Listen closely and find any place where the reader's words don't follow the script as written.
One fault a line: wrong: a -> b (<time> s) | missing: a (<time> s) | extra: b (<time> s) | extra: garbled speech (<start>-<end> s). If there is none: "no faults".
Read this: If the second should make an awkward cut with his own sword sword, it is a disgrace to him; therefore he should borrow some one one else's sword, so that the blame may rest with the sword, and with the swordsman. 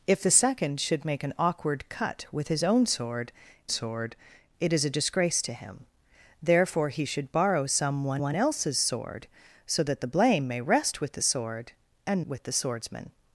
no faults